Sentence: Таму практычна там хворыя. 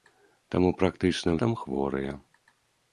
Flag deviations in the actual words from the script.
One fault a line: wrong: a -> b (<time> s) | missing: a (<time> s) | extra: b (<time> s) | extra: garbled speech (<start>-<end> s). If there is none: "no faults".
no faults